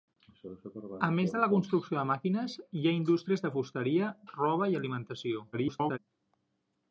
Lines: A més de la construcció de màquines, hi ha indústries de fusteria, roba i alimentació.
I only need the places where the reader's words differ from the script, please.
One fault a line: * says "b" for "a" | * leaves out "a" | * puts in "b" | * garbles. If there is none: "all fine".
* garbles